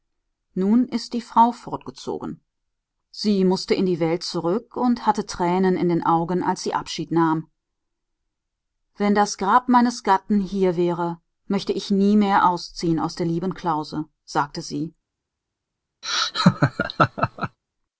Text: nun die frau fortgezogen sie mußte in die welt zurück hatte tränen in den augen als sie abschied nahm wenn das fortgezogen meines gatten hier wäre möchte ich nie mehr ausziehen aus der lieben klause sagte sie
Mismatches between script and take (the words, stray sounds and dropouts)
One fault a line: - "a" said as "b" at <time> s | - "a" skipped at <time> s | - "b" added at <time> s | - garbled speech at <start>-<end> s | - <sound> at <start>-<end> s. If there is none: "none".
- "ist" added at 0.9 s
- "und" added at 4.8 s
- "fortgezogen" said as "grab" at 9.4 s
- laugh at 16.0-17.6 s